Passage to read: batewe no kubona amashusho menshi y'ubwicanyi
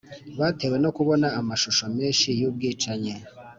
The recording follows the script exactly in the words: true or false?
true